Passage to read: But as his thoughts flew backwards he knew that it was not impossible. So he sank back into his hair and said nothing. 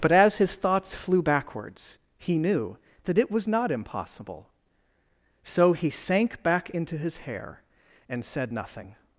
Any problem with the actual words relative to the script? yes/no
no